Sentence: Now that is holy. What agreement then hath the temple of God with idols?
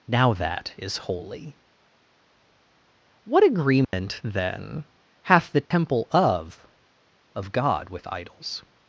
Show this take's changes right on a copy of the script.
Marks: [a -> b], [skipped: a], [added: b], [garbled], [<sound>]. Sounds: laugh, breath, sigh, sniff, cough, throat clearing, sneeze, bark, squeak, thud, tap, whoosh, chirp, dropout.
Now that is holy. What agreement [dropout] then hath the temple [dropout] of [added: of] God with idols?